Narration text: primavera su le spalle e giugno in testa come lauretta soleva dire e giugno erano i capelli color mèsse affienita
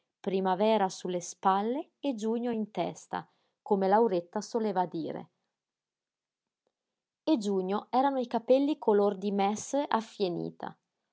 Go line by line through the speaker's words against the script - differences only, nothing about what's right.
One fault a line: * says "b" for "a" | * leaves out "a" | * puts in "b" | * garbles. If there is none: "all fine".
* puts in "di"